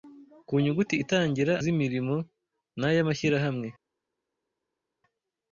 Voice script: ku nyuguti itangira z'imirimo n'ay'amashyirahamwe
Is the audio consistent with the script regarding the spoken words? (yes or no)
yes